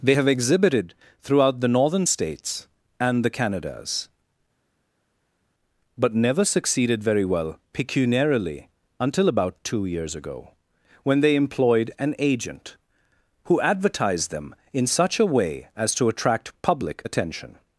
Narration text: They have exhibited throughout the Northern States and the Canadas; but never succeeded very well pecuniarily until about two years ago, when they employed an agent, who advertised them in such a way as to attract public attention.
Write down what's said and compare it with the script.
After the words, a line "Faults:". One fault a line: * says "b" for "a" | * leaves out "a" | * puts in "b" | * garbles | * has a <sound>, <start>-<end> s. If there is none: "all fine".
They have exhibited throughout the Northern States and the Canadas; but never succeeded very well pecuniarily until about two years ago, when they employed an agent, who advertised them in such a way as to attract public attention.
Faults:
all fine